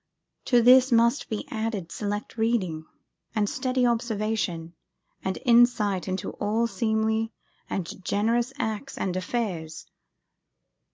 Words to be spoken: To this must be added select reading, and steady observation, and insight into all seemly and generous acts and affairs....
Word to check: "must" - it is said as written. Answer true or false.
true